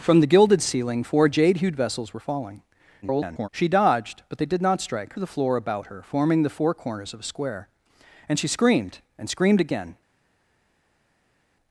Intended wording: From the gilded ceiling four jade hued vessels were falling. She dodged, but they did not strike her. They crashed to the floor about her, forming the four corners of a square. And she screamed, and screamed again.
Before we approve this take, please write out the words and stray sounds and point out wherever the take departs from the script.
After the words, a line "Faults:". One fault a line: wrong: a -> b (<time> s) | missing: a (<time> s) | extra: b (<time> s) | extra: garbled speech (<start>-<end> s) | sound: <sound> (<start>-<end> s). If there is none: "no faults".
From the gilded ceiling four jade hued vessels were falling. [garbled] She dodged, but they did not strike to the floor about her, forming the four corners of a square. And she screamed, and screamed again.
Faults:
extra: garbled speech (3.0-3.5 s)
missing: her They crashed (5.1 s)